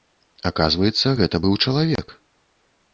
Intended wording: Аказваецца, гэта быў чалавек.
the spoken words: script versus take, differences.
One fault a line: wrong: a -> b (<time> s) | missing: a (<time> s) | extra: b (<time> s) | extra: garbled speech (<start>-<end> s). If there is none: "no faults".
no faults